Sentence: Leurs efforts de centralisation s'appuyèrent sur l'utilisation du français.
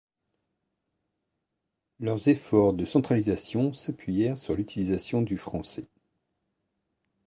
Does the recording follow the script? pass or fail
pass